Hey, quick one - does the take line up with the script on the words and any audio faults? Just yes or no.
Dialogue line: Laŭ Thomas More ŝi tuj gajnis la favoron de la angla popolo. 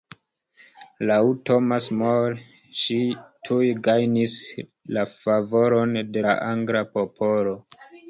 yes